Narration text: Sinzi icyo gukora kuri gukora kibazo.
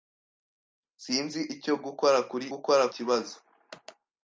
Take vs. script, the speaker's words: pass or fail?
pass